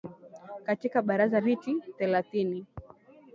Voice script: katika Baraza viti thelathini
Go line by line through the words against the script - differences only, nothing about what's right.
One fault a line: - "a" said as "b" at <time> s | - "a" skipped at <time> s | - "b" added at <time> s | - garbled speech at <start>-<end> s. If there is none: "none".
none